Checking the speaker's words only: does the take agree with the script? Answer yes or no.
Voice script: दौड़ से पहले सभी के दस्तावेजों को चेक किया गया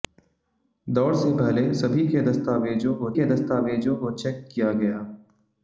no